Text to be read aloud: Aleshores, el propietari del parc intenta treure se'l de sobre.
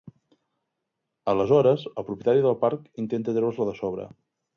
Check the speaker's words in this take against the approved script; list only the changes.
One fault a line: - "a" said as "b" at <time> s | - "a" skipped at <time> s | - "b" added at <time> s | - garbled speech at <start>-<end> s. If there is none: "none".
none